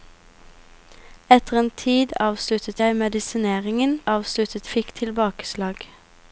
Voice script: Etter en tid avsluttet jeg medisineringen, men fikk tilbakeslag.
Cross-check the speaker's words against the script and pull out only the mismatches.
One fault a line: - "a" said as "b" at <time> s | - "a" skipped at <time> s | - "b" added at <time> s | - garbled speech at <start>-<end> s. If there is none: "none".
- "men" said as "avsluttet" at 4.1 s